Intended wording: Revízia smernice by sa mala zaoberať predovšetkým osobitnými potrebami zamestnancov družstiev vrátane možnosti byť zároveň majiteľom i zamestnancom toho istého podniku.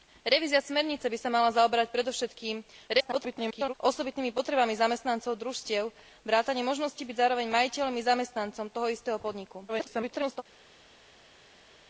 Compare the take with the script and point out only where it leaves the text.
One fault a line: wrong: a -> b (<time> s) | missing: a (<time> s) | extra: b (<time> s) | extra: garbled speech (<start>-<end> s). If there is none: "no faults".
extra: garbled speech (2.9-3.7 s)
extra: garbled speech (9.7-10.4 s)